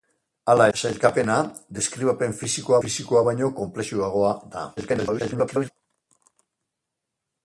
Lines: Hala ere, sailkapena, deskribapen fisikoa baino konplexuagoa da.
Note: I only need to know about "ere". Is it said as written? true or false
false